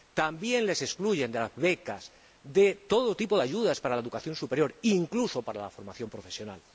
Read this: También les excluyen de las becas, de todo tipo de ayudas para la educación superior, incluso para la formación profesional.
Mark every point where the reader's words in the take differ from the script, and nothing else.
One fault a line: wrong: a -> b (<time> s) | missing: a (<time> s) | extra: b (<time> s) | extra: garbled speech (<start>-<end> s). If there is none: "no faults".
no faults